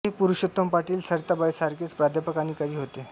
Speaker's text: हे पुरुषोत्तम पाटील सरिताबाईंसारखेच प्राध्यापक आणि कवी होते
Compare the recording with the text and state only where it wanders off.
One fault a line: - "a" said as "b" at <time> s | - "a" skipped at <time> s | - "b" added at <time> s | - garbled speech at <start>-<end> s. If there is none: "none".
none